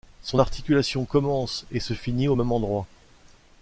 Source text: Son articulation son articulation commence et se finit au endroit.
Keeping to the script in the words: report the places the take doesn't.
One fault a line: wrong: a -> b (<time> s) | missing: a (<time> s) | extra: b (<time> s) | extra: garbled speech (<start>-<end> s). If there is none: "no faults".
missing: son articulation (1.0 s)
extra: même (2.3 s)